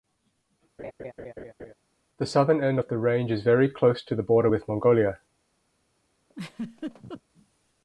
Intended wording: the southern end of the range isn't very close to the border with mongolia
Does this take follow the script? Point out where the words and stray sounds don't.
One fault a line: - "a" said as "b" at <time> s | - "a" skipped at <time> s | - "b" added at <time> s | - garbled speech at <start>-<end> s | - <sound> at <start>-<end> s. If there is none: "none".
- laugh at 0.8-1.7 s
- "isn't" said as "is" at 3.3 s
- laugh at 6.3-7.2 s